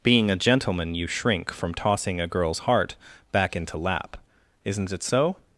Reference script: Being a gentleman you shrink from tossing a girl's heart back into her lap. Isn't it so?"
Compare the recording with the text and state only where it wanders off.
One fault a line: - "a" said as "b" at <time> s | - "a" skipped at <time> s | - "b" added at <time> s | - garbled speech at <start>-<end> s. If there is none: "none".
- "her" skipped at 3.8 s